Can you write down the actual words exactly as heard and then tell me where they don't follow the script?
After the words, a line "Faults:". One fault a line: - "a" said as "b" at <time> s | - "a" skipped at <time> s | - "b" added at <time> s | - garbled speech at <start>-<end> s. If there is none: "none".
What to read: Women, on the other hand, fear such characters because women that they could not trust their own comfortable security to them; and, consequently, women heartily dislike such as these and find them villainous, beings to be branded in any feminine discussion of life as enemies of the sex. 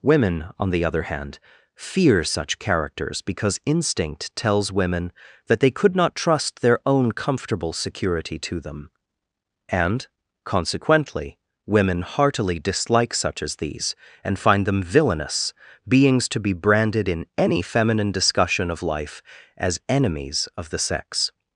Women, on the other hand, fear such characters because instinct tells women that they could not trust their own comfortable security to them; and, consequently, women heartily dislike such as these and find them villainous, beings to be branded in any feminine discussion of life as enemies of the sex.
Faults:
- "instinct tells" added at 3.6 s